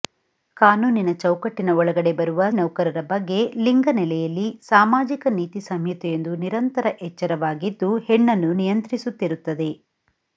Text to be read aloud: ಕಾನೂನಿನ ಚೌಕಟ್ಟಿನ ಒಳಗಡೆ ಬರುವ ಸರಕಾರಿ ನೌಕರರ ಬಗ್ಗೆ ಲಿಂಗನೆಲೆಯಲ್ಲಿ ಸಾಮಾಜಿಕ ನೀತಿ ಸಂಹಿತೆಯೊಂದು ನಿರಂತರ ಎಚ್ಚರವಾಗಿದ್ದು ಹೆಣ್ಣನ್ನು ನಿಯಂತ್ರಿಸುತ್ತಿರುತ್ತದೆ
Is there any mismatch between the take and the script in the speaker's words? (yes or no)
yes